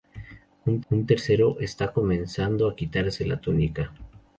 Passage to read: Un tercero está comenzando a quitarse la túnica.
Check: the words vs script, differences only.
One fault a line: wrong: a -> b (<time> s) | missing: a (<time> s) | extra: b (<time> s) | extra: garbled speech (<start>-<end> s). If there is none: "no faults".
extra: un (0.9 s)